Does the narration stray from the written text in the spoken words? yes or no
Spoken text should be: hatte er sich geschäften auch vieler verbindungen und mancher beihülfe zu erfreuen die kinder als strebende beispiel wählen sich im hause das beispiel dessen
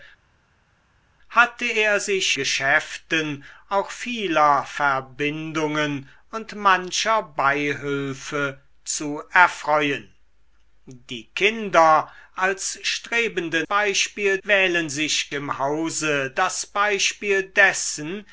no